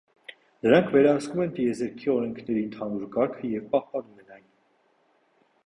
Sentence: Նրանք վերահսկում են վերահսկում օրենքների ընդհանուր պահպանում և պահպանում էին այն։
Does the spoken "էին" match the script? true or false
false